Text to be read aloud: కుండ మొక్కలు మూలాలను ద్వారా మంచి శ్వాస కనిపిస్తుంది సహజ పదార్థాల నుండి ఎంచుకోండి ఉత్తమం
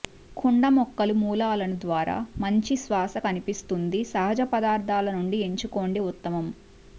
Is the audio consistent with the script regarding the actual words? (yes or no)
yes